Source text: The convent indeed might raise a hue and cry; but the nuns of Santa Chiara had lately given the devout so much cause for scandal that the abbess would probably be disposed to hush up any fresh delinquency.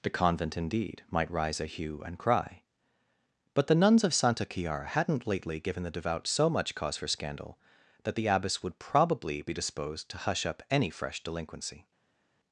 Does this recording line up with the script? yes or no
no